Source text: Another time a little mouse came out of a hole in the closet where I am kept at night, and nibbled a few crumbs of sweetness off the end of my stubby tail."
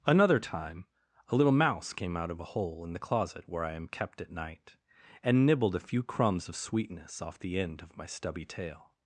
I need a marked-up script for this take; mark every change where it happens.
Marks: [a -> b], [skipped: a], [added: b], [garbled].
Another time a little mouse came out of a hole in the closet where I am kept at night, and nibbled a few crumbs of sweetness off the end of my stubby tail."